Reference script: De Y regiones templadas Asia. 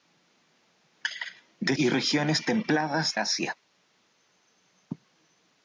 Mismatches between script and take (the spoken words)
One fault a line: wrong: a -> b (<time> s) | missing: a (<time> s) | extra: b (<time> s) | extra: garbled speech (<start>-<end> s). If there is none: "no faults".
no faults